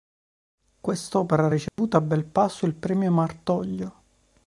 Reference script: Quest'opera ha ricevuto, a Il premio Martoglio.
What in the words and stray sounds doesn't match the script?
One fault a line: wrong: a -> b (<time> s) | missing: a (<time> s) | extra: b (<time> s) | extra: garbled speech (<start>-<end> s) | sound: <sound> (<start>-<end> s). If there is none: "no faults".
sound: dropout (1.7-1.8 s)
extra: Belpasso (2.0 s)